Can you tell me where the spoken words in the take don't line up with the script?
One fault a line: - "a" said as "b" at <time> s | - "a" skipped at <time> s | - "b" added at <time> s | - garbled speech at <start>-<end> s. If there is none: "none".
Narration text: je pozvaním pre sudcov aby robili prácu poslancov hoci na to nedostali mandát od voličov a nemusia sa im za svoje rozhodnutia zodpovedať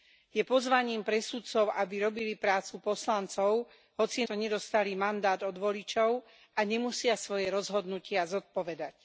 - "na" skipped at 4.2 s
- "sa im za" skipped at 7.2 s